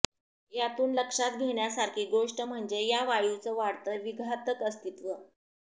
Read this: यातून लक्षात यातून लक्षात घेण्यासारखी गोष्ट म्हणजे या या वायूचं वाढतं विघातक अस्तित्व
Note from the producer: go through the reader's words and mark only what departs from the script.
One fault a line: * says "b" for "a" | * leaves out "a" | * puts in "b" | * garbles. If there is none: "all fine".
* leaves out "यातून लक्षात"
* leaves out "या"